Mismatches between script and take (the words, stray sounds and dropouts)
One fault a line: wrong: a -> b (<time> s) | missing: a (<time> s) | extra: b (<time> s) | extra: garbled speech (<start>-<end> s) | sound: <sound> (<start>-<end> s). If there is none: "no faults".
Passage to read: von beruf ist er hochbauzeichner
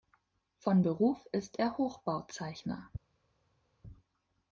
no faults